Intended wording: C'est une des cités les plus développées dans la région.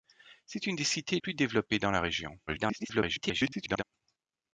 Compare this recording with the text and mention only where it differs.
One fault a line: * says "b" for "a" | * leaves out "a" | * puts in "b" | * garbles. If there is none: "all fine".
* leaves out "les"
* garbles